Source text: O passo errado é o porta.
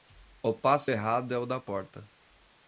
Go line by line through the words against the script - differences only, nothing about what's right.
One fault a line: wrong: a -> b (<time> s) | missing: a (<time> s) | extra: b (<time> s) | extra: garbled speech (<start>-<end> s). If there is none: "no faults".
extra: da (1.4 s)